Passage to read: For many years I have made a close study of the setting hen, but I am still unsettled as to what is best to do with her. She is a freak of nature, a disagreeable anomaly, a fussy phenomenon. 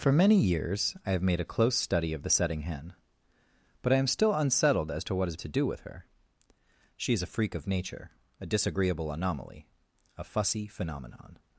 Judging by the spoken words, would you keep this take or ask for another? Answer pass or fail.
fail